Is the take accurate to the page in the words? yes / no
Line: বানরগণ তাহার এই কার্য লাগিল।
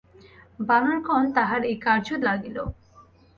yes